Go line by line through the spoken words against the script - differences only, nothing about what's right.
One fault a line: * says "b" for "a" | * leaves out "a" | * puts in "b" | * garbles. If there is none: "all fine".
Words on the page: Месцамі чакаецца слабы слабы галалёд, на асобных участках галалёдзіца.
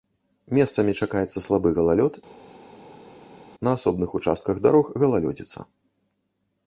* leaves out "слабы"
* puts in "дарог"